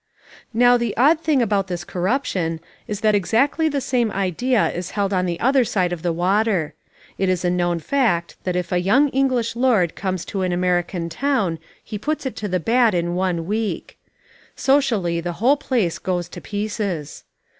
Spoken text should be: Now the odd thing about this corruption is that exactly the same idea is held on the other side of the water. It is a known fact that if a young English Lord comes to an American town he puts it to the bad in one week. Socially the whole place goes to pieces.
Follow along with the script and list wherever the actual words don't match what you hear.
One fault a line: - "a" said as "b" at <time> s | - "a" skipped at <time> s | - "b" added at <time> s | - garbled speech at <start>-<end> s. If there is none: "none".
none